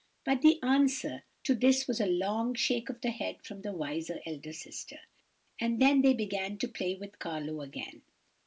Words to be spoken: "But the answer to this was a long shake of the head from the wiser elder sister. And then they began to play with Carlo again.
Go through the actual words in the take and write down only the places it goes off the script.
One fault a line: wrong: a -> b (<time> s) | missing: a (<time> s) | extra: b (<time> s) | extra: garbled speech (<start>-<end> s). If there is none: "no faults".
no faults